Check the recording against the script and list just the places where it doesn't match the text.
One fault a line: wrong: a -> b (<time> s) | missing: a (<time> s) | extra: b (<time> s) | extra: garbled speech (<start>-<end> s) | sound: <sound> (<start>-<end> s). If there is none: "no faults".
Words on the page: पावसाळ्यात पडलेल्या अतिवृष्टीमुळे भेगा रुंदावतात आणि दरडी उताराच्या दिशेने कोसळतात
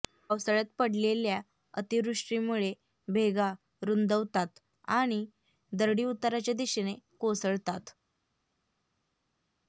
no faults